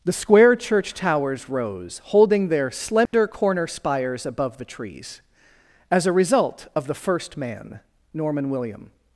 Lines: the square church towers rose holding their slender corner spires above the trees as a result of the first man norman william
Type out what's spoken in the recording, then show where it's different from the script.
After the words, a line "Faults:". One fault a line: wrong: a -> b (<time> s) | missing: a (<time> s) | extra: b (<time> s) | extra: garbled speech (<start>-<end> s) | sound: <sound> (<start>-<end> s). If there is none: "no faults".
the square church towers rose holding their slender corner spires above the trees as a result of the first man norman william
Faults:
sound: dropout (3.1-3.1 s)